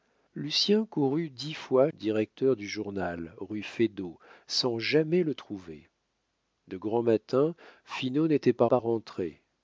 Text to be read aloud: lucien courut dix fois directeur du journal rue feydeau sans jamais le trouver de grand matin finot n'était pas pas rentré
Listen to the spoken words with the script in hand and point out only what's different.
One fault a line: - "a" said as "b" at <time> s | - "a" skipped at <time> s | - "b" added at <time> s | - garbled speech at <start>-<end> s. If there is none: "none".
none